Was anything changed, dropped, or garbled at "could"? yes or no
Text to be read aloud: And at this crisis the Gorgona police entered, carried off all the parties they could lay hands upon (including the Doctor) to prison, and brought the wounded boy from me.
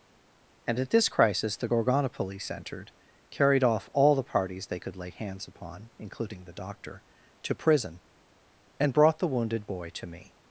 no